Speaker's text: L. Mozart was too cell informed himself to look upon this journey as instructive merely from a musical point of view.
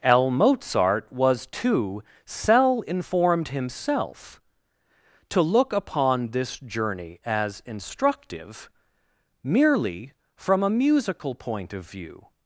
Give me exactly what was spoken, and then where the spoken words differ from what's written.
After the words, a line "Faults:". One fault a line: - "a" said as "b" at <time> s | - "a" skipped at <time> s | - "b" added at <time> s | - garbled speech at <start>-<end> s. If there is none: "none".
L. Mozart was too cell informed himself to look upon this journey as instructive merely from a musical point of view.
Faults:
none